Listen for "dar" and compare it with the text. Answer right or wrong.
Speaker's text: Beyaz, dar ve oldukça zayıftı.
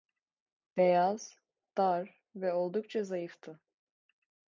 right